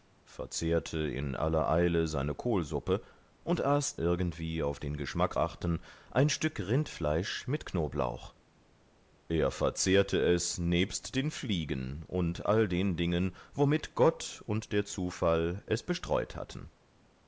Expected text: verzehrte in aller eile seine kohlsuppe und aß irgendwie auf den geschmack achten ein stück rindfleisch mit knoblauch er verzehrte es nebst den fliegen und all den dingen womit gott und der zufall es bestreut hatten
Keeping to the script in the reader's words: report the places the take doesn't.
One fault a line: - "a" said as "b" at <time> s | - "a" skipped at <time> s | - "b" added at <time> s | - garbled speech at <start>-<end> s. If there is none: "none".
none